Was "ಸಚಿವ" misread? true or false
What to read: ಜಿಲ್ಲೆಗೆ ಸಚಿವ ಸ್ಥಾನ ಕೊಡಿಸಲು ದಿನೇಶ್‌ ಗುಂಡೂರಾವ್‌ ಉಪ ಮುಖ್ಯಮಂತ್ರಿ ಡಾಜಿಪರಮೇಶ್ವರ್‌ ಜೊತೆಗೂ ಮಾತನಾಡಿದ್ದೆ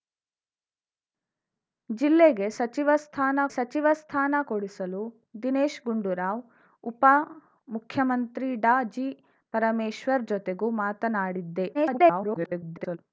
false